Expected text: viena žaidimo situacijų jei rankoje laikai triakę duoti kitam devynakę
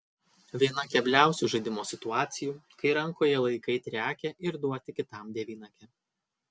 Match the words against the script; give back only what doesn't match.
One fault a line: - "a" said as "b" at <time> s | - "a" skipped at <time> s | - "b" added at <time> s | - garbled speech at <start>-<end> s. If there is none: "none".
- "kebliausių" added at 0.9 s
- "jei" said as "kai" at 2.8 s
- "ir" added at 4.5 s